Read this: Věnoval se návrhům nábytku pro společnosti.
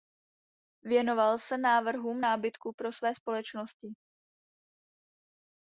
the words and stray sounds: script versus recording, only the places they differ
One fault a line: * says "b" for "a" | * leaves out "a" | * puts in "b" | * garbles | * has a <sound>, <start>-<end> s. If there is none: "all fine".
* puts in "své"